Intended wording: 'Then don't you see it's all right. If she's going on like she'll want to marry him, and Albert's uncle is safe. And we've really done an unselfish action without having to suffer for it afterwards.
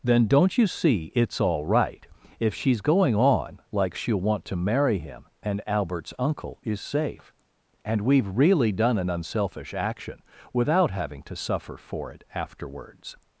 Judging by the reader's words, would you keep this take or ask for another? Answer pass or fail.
pass